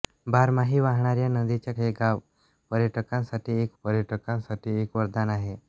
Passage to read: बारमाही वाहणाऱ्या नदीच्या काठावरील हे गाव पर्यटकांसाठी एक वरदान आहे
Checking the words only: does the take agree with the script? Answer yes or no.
no